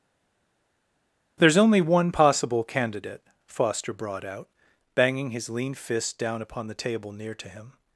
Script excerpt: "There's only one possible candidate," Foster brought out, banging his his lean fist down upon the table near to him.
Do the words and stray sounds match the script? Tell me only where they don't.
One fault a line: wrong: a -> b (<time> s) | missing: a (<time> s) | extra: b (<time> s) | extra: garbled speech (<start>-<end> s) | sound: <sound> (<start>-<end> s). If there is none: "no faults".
missing: his (5.5 s)